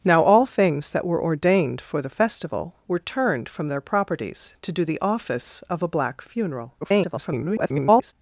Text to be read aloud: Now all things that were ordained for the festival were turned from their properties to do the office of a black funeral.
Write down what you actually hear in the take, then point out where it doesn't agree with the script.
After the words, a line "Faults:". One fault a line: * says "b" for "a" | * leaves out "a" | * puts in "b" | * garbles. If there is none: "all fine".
Now all things that were ordained for the festival were turned from their properties to do the office of a black funeral. [garbled]
Faults:
* garbles